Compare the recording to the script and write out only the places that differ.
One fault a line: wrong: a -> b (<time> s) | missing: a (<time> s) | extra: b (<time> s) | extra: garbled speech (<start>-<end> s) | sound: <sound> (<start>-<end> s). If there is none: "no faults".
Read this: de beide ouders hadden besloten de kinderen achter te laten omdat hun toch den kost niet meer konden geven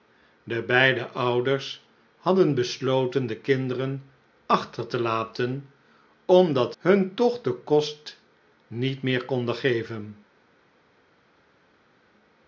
no faults